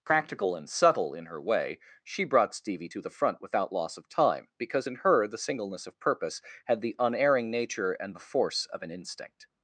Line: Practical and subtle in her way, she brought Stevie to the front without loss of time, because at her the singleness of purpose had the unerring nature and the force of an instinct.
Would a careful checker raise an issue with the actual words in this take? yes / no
yes